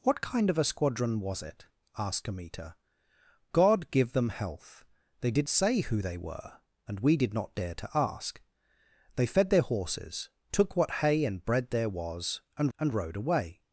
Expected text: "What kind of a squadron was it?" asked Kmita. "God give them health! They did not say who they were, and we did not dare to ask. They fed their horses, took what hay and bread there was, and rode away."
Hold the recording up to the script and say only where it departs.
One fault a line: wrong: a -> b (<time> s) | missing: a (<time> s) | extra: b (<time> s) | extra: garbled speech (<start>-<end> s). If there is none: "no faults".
missing: not (5.5 s)
extra: and (12.8 s)